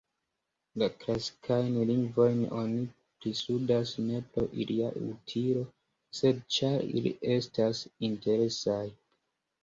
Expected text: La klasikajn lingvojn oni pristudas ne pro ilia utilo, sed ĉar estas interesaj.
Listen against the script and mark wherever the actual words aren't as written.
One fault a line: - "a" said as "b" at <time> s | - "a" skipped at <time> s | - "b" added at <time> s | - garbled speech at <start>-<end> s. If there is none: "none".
- "ili" added at 7.0 s